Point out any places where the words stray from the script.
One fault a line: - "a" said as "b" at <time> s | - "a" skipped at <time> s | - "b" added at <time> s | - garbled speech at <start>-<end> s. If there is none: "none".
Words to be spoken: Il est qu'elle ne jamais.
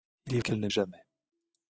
none